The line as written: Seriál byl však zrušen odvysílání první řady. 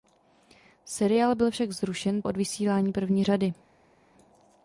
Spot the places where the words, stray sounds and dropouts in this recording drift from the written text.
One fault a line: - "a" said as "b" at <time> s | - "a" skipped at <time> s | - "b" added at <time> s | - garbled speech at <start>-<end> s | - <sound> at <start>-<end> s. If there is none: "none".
none